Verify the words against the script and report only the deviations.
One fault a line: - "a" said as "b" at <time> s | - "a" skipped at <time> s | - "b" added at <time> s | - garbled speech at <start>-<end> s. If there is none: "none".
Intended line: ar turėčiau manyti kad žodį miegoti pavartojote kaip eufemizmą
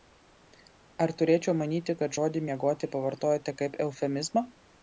none